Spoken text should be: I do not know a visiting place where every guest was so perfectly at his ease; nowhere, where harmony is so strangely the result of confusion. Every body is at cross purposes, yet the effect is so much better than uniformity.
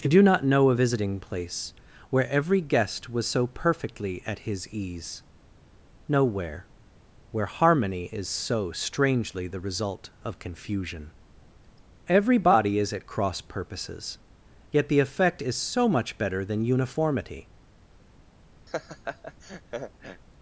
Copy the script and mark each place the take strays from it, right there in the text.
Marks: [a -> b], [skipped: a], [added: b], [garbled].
I do not know a visiting place where every guest was so perfectly at his ease; nowhere, where harmony is so strangely the result of confusion. Every body is at cross purposes, yet the effect is so much better than uniformity.